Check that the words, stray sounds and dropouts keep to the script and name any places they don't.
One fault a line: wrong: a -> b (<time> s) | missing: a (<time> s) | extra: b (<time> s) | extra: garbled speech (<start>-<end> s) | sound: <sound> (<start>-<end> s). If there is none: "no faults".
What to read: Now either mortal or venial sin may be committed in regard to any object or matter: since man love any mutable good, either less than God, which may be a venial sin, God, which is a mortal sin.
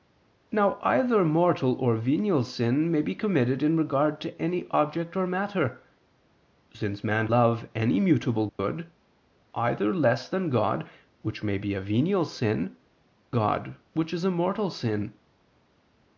sound: dropout (8.5-8.6 s)